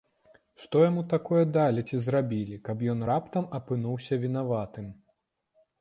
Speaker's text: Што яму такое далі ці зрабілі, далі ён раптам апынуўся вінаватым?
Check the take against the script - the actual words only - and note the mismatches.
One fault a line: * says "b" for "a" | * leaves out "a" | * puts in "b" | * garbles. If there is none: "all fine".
* says "каб" for "далі"